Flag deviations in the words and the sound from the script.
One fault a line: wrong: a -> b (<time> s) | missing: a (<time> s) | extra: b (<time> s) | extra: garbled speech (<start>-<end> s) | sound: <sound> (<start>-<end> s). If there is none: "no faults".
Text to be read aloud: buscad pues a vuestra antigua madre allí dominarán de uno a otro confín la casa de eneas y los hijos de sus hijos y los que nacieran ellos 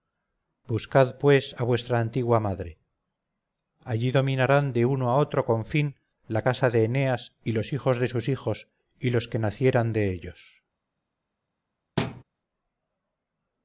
extra: de (9.9 s)
sound: thud (12.0-12.2 s)